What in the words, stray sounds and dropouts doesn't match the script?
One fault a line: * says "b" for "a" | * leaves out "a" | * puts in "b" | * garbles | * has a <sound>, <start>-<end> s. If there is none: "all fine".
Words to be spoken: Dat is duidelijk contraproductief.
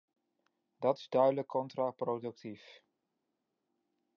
all fine